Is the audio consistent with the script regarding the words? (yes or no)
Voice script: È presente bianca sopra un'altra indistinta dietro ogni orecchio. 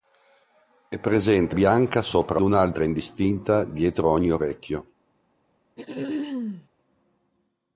yes